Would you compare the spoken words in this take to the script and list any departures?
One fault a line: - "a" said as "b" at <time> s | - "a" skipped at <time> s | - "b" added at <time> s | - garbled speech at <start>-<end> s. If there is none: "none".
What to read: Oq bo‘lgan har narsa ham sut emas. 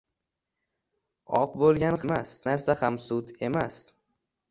- "har" said as "emas" at 2.1 s